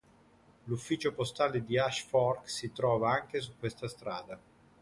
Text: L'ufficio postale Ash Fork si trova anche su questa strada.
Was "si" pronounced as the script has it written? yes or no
yes